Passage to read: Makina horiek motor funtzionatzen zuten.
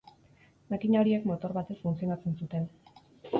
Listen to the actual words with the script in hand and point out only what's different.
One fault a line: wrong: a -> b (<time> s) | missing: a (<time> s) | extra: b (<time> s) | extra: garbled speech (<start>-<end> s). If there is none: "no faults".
extra: batez (1.6 s)